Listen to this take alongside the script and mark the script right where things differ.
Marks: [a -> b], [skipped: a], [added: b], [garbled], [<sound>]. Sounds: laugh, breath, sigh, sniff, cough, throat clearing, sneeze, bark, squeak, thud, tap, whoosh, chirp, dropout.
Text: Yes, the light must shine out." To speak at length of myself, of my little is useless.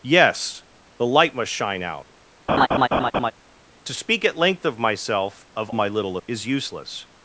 Yes, the light must shine out." [laugh] To speak at length of myself, of my little is useless.